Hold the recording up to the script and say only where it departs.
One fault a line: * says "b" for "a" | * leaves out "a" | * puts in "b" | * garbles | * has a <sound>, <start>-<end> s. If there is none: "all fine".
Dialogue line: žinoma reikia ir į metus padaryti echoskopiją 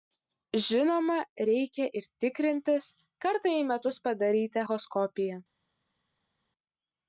* puts in "tikrintis kartą"